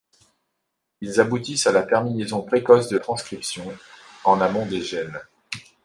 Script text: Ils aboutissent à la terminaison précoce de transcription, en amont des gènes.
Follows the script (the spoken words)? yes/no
yes